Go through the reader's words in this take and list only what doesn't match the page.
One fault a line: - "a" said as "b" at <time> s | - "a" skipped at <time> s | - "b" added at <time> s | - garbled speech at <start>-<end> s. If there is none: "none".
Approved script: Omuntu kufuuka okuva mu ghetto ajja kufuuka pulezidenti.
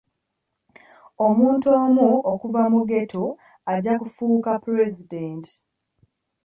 - "kufuuka" said as "omu" at 1.8 s